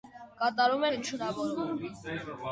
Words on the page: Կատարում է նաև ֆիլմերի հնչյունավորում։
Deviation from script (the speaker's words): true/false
true